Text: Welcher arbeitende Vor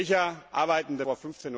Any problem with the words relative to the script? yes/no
no